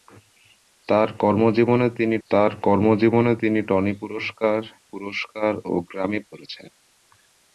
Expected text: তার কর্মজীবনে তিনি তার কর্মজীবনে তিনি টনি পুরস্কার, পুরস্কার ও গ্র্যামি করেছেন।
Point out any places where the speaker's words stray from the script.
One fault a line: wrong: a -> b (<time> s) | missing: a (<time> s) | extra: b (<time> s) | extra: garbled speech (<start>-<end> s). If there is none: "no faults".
no faults